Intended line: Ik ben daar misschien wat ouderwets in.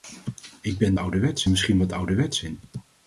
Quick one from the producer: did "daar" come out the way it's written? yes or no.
no